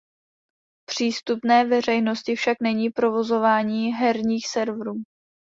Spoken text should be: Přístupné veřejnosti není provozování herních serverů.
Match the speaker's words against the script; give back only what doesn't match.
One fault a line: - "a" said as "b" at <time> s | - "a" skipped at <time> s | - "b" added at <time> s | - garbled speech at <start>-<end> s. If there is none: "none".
- "však" added at 2.4 s